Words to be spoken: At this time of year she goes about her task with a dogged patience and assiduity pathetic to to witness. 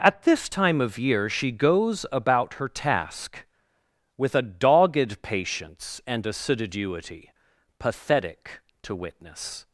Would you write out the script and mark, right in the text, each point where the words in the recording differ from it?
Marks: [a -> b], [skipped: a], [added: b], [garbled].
At this time of year she goes about her task with a dogged patience and assiduity pathetic to [skipped: to] witness.